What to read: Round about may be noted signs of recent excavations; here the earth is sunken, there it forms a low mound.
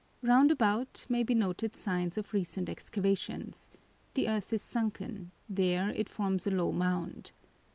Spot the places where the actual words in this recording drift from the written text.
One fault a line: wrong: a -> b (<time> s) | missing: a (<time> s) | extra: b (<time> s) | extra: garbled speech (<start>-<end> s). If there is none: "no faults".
missing: here (3.7 s)